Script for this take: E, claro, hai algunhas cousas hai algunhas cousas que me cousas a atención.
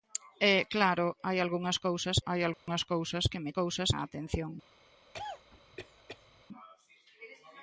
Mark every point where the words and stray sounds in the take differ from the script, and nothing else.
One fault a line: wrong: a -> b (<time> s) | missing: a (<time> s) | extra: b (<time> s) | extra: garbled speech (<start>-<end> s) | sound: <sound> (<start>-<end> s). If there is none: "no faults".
sound: dropout (2.5-2.7 s)
sound: cough (5.1-6.4 s)